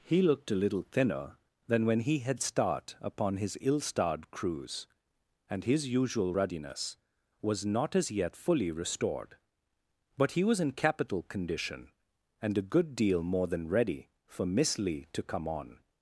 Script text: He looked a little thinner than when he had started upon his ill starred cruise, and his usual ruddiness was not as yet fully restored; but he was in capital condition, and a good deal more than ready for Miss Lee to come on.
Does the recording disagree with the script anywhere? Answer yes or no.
yes